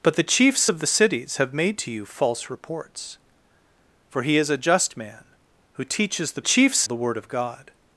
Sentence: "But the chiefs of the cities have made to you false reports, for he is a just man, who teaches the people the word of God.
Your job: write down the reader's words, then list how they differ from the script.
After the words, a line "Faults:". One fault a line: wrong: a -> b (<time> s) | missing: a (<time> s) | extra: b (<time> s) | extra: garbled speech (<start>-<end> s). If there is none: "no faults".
"But the chiefs of the cities have made to you false reports, for he is a just man, who teaches the chiefs the word of God.
Faults:
wrong: people -> chiefs (6.4 s)